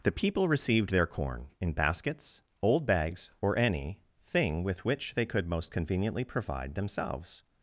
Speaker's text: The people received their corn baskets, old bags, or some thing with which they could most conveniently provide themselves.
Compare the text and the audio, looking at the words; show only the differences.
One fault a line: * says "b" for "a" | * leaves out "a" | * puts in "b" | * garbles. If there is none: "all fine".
* puts in "in"
* says "any" for "some"